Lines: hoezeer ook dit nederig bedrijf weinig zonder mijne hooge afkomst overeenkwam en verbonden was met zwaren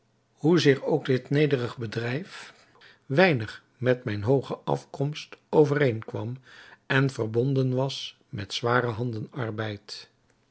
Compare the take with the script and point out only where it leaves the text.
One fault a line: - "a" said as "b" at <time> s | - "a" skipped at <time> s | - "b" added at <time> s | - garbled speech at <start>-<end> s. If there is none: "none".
- "zonder" said as "met" at 3.8 s